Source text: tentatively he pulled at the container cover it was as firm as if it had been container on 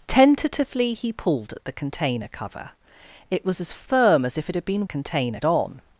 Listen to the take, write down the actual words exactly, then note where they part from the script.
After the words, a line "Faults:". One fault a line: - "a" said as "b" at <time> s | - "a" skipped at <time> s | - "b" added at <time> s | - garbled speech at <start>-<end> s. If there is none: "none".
tentatively he pulled at the container cover it was as firm as if it had been container on
Faults:
none